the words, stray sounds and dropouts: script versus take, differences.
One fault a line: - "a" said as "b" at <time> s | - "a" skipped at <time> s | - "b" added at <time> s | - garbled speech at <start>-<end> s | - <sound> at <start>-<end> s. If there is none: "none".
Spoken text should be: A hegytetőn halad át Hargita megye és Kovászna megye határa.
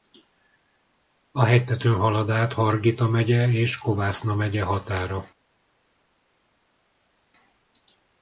none